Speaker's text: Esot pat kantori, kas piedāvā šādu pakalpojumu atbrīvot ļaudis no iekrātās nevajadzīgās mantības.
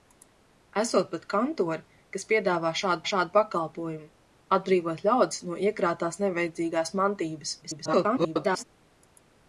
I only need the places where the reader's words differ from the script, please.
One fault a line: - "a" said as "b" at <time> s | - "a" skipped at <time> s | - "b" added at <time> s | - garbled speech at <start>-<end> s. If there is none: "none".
- "šādu" added at 3.1 s
- garbled speech at 7.6-8.6 s